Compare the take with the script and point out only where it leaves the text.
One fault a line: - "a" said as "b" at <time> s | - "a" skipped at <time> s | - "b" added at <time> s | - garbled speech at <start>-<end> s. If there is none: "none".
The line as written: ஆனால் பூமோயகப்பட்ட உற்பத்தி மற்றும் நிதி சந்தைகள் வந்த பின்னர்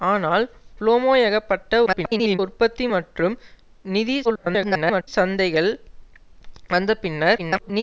- garbled speech at 1.9-2.4 s
- garbled speech at 4.2-5.1 s
- garbled speech at 7.4-7.8 s